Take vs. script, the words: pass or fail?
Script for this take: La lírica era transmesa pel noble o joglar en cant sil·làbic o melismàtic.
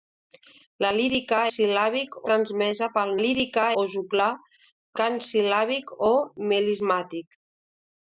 fail